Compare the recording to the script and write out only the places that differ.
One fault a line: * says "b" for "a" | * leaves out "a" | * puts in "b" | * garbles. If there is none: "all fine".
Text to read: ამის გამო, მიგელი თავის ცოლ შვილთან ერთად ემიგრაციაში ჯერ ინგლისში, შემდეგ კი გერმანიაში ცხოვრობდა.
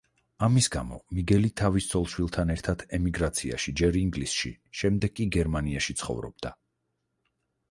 all fine